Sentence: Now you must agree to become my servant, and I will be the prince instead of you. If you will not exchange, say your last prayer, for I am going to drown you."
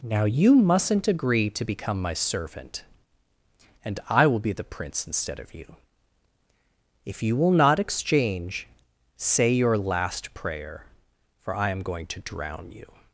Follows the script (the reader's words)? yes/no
no